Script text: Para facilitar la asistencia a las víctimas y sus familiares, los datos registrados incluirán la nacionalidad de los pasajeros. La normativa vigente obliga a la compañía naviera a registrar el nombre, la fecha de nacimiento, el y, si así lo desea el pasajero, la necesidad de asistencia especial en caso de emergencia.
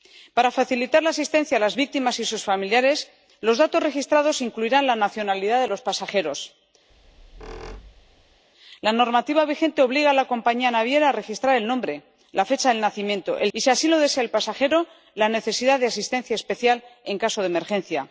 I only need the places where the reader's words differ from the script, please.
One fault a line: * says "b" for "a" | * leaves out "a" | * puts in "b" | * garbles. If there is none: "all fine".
all fine